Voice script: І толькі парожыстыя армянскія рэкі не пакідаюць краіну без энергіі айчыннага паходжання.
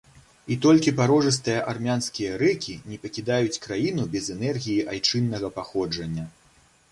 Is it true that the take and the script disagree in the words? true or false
false